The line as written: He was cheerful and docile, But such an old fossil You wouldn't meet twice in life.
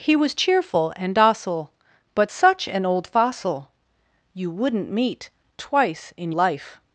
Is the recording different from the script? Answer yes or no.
no